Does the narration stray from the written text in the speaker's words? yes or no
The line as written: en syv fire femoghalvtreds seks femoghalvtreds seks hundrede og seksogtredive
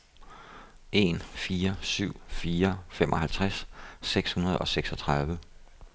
yes